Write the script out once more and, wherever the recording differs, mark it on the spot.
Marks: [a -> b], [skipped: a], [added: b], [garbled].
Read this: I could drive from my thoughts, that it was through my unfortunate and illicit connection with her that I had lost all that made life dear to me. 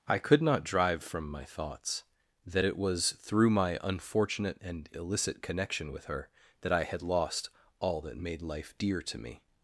I could [added: not] drive from my thoughts, that it was through my unfortunate and illicit connection with her that I had lost all that made life dear to me.